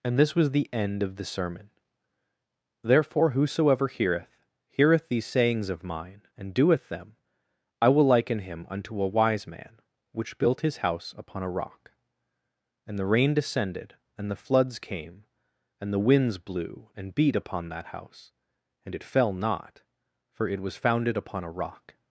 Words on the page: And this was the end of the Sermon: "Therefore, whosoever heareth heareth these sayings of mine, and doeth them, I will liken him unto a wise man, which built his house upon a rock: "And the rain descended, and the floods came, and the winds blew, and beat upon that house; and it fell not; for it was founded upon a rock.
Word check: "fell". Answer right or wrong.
right